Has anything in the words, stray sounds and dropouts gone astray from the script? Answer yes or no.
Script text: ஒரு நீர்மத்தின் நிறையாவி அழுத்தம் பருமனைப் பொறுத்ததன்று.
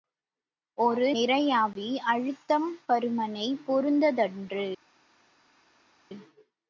yes